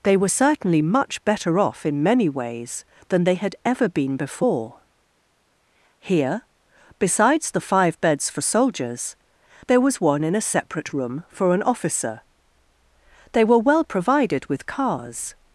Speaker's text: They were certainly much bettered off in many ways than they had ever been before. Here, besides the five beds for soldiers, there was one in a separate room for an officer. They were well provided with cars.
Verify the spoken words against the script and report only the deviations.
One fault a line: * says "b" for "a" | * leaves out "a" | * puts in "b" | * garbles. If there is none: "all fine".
* says "better" for "bettered"